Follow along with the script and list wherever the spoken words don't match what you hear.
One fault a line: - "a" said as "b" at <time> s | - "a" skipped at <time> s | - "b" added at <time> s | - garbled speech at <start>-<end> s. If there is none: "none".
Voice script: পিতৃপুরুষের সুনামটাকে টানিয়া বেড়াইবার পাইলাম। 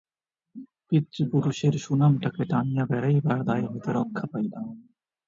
- "দায় হইতে রক্ষা" added at 3.4 s